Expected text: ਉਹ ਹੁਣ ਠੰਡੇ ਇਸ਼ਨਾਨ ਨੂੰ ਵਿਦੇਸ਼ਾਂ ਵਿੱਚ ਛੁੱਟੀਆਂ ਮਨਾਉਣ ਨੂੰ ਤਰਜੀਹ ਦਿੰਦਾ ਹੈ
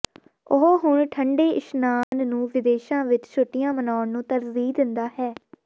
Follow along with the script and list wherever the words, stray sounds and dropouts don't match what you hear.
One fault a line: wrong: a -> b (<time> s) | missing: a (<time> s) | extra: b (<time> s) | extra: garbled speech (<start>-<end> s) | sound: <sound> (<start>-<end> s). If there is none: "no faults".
sound: dropout (2.0-2.1 s)